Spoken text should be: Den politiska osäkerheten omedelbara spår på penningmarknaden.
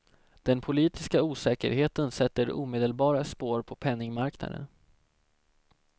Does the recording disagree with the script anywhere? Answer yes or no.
yes